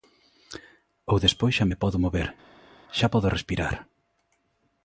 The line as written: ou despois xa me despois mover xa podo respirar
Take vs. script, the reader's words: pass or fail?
fail